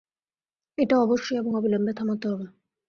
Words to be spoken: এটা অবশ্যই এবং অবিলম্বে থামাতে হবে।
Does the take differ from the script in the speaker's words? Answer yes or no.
no